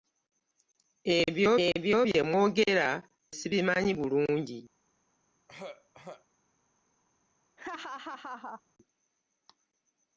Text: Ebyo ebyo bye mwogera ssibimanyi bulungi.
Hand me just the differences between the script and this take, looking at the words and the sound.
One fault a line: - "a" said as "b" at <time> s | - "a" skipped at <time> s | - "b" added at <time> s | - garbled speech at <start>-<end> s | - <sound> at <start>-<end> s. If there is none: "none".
- throat clearing at 5.5-6.2 s
- laugh at 7.6-8.6 s